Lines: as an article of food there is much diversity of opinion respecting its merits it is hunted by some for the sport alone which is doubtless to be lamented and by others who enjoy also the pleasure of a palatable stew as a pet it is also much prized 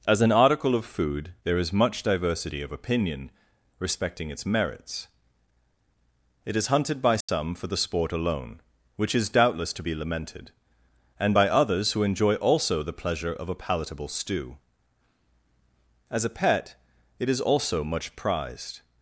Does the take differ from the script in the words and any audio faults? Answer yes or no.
yes